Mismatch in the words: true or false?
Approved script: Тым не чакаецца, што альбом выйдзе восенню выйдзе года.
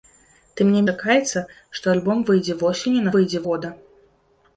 false